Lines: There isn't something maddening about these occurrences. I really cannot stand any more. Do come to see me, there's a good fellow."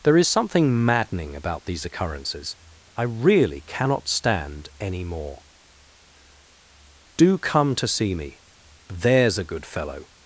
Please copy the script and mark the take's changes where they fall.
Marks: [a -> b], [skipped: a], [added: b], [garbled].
There [isn't -> is] something maddening about these occurrences. I really cannot stand any more. Do come to see me, there's a good fellow."